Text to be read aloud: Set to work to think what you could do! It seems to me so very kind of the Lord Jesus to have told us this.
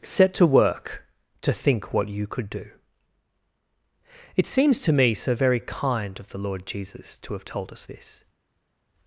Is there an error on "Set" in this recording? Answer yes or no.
no